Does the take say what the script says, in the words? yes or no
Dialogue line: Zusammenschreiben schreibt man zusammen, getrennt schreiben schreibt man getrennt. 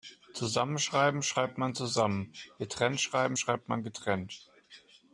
yes